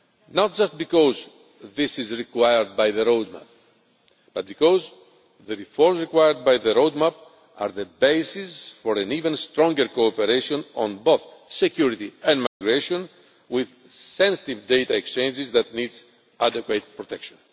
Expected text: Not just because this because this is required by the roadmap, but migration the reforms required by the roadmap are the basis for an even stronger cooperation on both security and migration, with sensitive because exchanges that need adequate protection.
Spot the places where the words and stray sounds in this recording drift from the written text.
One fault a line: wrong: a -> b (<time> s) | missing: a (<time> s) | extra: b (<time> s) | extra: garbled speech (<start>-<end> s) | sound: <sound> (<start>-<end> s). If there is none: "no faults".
missing: because this (2.0 s)
wrong: migration -> because (4.5 s)
sound: dropout (12.5-12.6 s)
wrong: because -> data (14.7 s)